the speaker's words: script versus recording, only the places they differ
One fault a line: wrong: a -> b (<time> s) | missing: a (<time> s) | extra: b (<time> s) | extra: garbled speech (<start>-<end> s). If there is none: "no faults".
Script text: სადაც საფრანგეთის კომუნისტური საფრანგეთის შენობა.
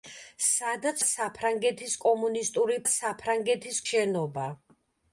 no faults